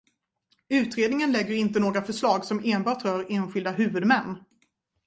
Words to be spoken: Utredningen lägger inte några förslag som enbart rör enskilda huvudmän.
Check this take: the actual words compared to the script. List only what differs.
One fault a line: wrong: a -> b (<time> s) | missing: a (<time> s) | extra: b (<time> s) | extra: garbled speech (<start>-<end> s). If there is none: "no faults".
no faults